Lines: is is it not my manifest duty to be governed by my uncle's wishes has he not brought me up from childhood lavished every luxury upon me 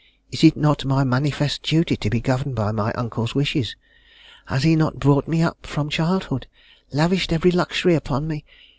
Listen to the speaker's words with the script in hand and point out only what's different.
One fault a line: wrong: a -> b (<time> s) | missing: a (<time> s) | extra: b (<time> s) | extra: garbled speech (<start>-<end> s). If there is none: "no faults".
missing: is (0.4 s)